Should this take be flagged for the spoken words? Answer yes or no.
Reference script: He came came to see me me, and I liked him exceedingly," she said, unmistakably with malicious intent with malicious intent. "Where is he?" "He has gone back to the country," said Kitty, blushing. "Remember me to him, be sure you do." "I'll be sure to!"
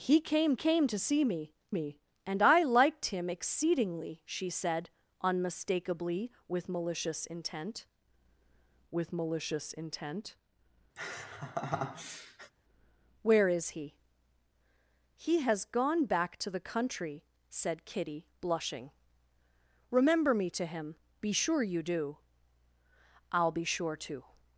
no